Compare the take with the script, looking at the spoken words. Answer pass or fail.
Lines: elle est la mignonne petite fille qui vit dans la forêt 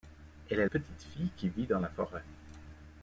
fail